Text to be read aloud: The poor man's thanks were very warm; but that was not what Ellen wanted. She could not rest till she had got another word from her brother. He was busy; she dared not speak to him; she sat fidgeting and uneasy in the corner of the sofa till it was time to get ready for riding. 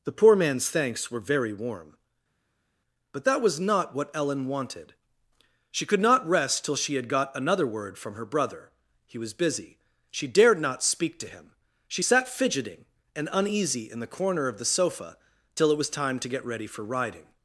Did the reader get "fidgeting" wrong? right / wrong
right